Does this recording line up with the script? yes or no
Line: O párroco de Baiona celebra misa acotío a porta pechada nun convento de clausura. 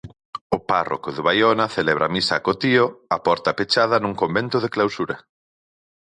yes